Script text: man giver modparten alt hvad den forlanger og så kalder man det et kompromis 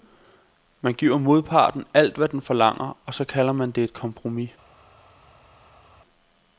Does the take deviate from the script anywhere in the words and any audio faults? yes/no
no